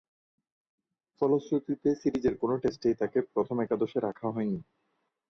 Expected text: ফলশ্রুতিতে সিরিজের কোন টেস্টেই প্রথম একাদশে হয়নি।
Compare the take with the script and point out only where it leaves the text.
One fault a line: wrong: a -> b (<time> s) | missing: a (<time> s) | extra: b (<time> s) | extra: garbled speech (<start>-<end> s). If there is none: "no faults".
extra: তাকে (3.0 s)
extra: রাখা (4.0 s)